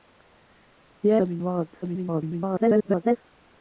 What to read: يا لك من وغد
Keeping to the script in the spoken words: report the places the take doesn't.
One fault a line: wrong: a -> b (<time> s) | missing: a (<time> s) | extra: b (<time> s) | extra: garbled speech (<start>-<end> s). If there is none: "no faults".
missing: لك (1.2 s)
extra: garbled speech (1.8-3.2 s)